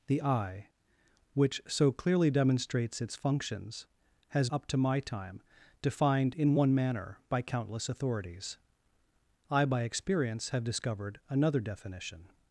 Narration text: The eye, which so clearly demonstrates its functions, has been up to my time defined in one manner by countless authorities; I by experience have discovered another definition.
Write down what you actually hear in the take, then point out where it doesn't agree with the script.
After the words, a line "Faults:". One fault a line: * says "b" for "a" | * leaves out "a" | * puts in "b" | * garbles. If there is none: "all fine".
The eye, which so clearly demonstrates its functions, has up to my time defined in one manner by countless authorities; I by experience have discovered another definition.
Faults:
* leaves out "been"